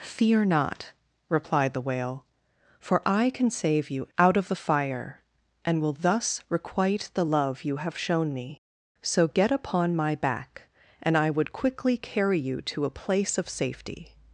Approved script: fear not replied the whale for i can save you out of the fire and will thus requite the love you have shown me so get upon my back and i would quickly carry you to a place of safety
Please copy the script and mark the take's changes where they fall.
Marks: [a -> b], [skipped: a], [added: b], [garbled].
fear not replied the whale for i can save you out of the fire and will thus requite the love you have shown me so get upon my back and i would quickly carry you to a place of safety